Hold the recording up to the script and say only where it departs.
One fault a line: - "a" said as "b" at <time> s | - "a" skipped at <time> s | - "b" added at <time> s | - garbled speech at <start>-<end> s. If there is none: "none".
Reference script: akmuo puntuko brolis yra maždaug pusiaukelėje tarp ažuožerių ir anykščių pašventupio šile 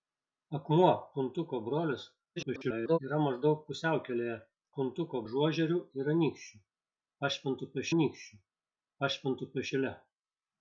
- garbled speech at 2.4-3.0 s
- "tarp" said as "puntuko" at 4.8 s
- "anykščių pašventupio" added at 7.9 s